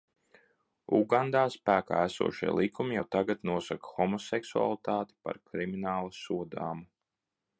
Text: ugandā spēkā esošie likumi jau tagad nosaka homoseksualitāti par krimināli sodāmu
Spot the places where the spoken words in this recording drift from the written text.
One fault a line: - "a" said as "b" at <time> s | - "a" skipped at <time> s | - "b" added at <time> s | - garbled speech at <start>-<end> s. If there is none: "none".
none